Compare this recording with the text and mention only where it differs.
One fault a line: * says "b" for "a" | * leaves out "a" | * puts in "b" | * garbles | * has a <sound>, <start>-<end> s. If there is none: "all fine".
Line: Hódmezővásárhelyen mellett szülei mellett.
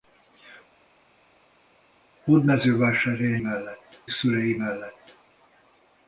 all fine